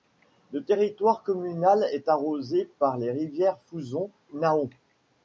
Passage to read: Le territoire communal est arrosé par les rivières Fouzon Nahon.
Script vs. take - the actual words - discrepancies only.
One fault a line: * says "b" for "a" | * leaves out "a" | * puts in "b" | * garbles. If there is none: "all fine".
all fine